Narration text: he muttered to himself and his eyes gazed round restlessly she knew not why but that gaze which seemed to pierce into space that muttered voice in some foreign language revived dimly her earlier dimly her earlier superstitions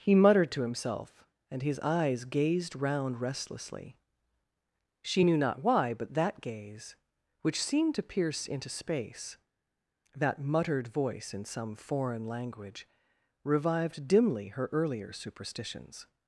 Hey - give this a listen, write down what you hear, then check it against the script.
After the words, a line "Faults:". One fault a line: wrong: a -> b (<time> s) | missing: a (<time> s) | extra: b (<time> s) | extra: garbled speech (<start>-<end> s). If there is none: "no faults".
he muttered to himself and his eyes gazed round restlessly she knew not why but that gaze which seemed to pierce into space that muttered voice in some foreign language revived dimly her earlier superstitions
Faults:
missing: dimly her earlier (15.1 s)